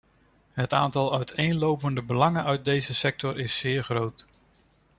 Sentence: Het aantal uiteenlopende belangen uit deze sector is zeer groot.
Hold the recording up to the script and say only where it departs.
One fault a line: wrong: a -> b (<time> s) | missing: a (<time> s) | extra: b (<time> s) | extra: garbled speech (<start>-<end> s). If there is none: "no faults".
no faults